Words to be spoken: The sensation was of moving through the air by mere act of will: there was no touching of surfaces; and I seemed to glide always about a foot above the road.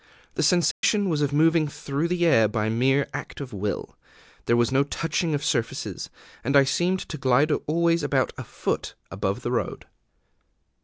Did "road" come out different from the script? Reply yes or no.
no